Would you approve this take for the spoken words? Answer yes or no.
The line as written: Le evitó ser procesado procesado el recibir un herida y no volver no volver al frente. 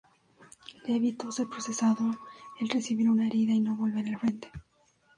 no